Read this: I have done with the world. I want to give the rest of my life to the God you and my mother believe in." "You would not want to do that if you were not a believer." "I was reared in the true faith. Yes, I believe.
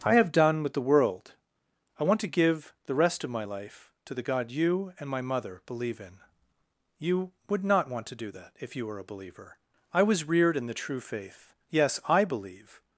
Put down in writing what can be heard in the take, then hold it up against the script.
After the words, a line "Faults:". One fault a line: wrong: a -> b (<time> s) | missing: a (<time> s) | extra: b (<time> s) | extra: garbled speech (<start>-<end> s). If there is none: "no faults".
I have done with the world. I want to give the rest of my life to the God you and my mother believe in." "You would not want to do that if you were a believer." "I was reared in the true faith. Yes, I believe.
Faults:
missing: not (9.0 s)